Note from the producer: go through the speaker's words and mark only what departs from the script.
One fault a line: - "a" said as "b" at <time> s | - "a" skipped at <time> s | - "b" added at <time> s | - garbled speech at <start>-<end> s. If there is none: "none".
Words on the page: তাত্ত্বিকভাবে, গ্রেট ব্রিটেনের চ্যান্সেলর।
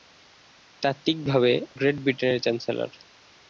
none